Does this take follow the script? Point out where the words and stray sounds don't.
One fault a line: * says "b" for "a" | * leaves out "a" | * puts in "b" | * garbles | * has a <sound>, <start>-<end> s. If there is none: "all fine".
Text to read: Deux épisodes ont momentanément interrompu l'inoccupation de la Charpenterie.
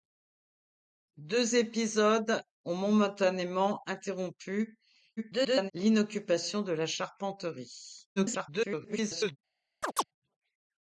* garbles
* garbles
* has a chirp, 9.8-10.0 s